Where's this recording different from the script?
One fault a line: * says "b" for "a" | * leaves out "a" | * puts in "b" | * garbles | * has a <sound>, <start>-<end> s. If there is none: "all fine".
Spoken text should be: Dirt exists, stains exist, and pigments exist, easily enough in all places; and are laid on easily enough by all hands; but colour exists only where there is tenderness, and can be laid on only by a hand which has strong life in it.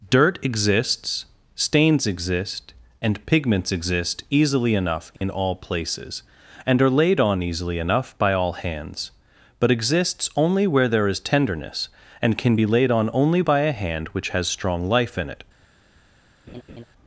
* has a dropout, 5.2-5.2 s
* leaves out "colour"
* has a laugh, 16.5-16.8 s